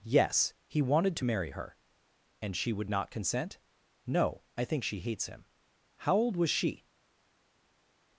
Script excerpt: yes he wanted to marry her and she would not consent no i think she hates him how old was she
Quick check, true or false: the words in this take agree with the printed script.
true